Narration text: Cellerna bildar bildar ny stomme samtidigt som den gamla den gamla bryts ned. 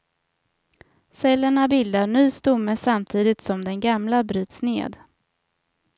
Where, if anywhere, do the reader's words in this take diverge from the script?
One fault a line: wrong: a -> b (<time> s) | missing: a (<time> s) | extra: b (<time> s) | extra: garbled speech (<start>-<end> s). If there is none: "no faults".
missing: bildar (2.1 s)
missing: den gamla (4.2 s)